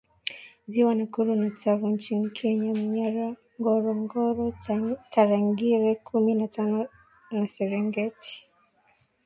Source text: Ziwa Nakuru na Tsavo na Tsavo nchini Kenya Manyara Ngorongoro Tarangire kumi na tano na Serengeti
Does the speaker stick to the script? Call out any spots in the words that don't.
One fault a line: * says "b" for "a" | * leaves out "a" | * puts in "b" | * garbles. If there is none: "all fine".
* leaves out "na Tsavo"